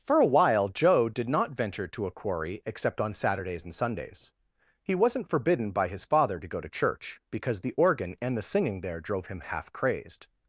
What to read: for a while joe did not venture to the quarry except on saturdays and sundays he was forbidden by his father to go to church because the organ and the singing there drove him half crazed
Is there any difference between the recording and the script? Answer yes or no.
yes